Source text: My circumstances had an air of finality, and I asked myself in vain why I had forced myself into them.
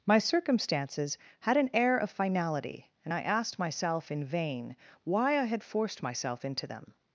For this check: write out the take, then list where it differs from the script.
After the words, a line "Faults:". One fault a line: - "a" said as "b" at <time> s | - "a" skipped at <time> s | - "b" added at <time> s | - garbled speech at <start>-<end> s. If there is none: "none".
My circumstances had an air of finality, and I asked myself in vain why I had forced myself into them.
Faults:
none